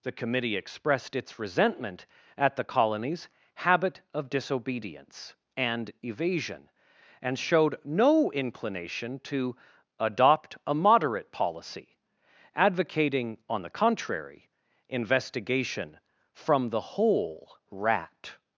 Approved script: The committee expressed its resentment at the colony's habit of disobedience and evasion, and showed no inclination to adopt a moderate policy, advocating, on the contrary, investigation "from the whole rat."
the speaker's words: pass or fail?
pass